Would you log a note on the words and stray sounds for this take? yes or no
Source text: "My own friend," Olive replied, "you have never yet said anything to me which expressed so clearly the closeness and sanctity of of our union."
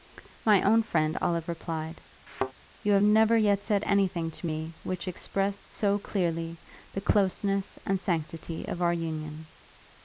yes